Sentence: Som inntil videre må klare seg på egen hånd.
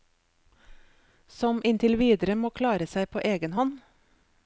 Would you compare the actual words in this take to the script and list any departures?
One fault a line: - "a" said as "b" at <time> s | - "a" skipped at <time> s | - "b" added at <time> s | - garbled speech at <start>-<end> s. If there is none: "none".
none